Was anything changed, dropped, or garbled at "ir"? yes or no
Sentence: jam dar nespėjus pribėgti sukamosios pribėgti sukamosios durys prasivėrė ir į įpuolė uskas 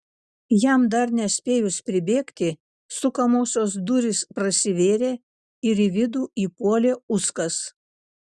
no